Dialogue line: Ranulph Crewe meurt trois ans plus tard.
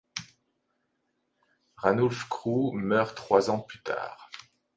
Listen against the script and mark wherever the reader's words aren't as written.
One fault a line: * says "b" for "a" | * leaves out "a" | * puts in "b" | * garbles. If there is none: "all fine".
all fine